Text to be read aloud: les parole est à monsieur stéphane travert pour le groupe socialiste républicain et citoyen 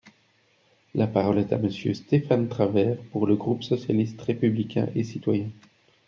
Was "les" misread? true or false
true